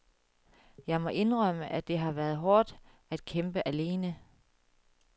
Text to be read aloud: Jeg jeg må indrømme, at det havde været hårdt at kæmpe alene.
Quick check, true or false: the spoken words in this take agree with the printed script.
false